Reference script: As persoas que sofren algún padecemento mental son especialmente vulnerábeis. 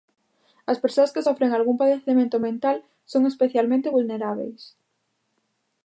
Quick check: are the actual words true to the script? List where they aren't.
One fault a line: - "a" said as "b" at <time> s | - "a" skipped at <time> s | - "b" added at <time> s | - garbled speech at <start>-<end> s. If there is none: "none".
none